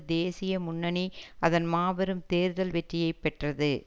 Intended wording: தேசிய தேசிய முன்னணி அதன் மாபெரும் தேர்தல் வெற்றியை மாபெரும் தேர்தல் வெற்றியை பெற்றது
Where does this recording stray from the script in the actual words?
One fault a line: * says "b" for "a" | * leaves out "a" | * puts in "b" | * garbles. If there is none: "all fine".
* leaves out "தேசிய"
* leaves out "மாபெரும் தேர்தல் வெற்றியை"